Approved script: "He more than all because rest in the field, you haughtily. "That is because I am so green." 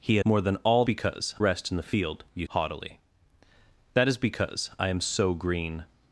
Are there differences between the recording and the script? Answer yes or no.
no